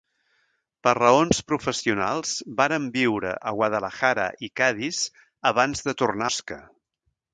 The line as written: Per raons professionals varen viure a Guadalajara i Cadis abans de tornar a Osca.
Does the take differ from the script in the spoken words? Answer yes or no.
yes